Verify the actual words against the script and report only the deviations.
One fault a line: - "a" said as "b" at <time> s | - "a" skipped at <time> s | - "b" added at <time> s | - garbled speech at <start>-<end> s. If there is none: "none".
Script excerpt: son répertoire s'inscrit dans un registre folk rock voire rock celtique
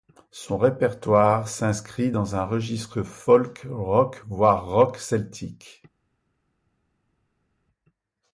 none